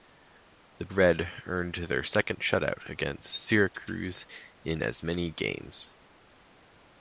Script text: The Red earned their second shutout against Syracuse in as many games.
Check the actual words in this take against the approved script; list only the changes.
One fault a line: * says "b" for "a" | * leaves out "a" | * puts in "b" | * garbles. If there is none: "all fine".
all fine